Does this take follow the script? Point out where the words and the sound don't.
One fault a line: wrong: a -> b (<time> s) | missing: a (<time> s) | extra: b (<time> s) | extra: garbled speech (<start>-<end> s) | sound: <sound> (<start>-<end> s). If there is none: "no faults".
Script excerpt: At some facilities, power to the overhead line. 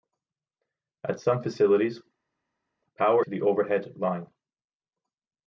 no faults